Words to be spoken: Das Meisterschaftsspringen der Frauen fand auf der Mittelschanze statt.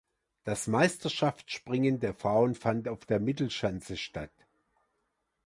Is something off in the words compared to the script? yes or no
no